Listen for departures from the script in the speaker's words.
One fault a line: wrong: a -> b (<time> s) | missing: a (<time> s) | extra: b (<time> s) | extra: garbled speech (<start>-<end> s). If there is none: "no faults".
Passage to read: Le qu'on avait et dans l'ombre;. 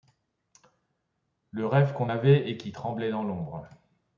extra: rêve (1.7 s)
extra: qui tremblait (2.6 s)